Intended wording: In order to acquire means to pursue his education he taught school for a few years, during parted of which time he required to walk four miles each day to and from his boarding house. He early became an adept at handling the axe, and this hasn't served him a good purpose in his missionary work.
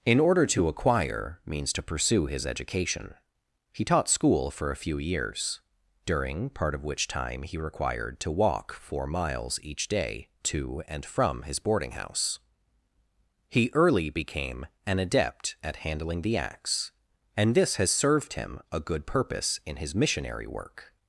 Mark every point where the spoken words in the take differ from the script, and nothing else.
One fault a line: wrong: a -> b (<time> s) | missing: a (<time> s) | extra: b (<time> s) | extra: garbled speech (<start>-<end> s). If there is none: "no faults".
wrong: parted -> part (6.5 s)
wrong: hasn't -> has (17.8 s)